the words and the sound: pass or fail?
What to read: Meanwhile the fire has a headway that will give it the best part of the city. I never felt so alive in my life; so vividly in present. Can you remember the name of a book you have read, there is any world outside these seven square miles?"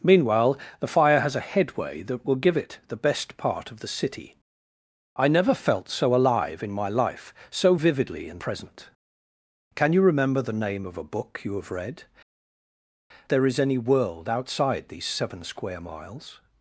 pass